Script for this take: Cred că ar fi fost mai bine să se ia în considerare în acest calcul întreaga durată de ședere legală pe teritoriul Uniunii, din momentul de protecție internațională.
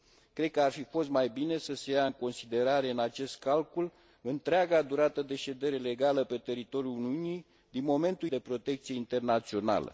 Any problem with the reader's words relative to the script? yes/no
no